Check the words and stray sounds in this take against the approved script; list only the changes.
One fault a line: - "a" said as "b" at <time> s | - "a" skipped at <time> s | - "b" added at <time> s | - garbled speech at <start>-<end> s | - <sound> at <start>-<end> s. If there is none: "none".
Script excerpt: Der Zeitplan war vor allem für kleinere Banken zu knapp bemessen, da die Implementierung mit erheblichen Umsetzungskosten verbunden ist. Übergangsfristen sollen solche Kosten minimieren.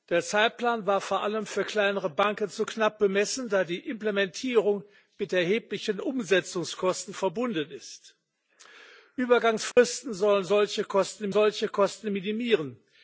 - dropout at 9.7-9.8 s
- "solche Kosten" added at 11.3 s